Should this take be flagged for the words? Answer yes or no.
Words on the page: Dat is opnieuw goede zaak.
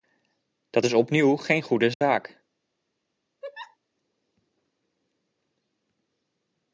yes